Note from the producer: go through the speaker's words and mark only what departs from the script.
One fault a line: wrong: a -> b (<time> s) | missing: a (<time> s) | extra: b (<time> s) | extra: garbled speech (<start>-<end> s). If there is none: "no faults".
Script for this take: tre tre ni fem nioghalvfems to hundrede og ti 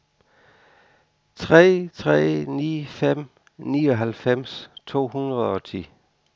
no faults